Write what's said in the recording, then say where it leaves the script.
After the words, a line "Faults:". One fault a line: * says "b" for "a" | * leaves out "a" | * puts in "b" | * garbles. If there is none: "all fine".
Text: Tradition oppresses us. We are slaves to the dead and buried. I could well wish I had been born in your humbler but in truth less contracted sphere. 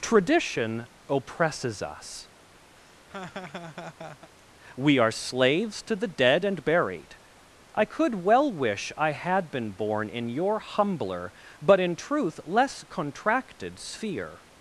Tradition oppresses us. We are slaves to the dead and buried. I could well wish I had been born in your humbler but in truth less contracted sphere.
Faults:
all fine